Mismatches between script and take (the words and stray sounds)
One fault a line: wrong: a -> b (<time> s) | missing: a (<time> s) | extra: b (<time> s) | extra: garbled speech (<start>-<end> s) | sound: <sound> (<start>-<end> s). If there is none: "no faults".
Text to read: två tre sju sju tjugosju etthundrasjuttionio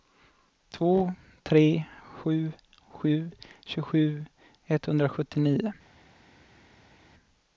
no faults